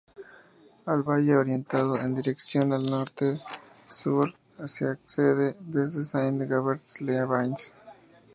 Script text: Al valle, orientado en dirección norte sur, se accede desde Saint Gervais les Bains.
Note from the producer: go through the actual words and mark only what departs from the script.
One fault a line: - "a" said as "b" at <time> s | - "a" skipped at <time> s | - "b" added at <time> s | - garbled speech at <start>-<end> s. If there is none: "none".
none